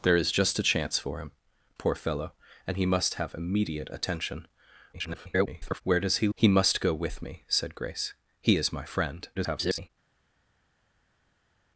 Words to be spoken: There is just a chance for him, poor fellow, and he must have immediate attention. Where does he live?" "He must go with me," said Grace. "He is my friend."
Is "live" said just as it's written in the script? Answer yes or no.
no